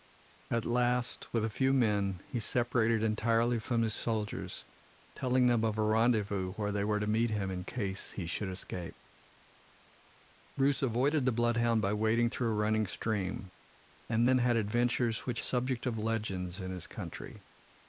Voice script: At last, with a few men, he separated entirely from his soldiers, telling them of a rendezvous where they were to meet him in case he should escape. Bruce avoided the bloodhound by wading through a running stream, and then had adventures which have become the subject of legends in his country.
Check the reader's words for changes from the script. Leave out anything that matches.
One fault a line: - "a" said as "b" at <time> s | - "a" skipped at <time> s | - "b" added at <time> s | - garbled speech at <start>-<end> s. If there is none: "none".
- "have become the" skipped at 15.4 s